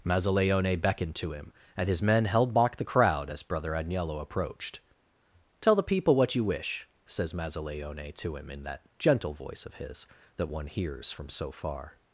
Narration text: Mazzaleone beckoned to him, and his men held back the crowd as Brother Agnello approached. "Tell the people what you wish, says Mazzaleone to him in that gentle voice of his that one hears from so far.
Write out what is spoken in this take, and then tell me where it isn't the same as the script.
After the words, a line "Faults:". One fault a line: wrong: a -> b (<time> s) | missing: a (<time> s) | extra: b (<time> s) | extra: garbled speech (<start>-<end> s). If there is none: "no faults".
Mazzaleone beckoned to him, and his men held back the crowd as Brother Agnello approached. "Tell the people what you wish, says Mazzaleone to him in that gentle voice of his that one hears from so far.
Faults:
no faults